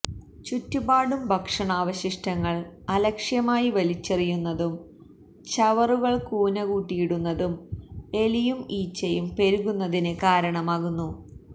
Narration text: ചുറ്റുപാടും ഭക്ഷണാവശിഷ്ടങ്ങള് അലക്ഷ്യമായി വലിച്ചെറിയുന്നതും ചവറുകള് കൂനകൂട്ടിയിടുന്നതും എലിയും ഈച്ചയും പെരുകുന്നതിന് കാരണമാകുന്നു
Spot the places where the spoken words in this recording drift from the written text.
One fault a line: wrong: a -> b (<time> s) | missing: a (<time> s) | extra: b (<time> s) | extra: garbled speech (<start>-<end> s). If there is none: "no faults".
no faults